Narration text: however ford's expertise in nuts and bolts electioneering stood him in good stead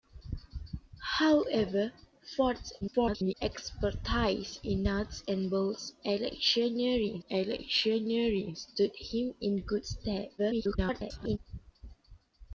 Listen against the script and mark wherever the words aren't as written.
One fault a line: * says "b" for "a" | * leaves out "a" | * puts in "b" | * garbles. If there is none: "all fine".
* garbles
* puts in "electioneering"
* garbles